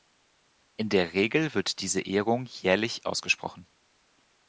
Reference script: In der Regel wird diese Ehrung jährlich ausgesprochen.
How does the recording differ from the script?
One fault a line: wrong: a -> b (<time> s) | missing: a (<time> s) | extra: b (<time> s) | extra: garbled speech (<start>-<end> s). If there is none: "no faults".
no faults